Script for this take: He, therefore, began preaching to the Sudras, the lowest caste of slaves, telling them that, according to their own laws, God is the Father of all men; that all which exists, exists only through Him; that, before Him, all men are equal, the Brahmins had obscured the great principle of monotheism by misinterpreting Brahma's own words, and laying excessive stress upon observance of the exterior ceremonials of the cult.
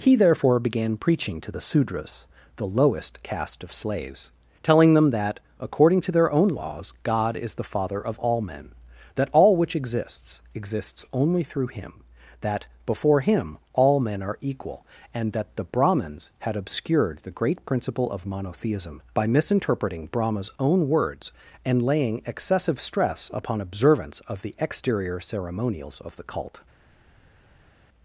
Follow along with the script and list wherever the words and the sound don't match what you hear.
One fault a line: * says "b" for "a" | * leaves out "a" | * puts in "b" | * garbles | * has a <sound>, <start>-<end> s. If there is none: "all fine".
* puts in "and that"